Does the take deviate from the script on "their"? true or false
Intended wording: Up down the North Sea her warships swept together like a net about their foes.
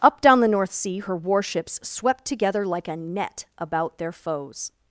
false